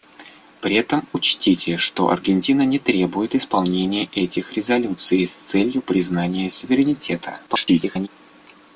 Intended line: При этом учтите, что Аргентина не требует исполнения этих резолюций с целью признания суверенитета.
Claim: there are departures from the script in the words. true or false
true